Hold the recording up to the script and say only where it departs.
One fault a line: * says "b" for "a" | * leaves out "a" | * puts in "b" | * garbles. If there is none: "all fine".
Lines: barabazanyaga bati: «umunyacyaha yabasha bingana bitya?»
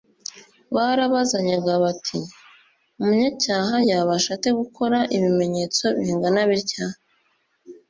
* puts in "ate gukora ibimenyetso"